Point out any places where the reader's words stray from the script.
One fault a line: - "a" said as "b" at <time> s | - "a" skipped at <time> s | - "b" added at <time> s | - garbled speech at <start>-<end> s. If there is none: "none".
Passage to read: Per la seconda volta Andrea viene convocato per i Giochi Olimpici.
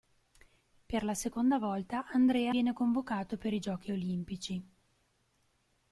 none